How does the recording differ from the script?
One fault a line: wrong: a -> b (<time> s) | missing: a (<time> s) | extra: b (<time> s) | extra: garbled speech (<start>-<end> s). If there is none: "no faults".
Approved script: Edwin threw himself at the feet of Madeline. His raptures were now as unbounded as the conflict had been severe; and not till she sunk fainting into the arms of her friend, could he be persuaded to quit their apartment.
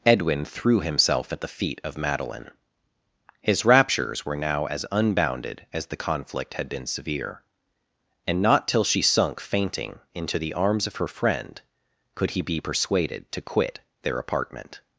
no faults